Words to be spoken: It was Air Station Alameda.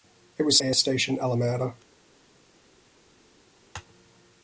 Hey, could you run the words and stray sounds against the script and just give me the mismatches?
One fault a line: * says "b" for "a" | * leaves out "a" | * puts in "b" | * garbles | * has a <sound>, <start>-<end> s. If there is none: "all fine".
all fine